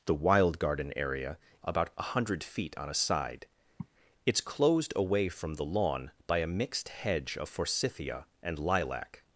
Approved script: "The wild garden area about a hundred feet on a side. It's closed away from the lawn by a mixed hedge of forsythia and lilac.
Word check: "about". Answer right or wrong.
right